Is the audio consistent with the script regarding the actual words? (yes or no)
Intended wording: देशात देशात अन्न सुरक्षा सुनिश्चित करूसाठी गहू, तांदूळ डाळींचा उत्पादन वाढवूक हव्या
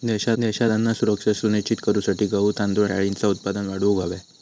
yes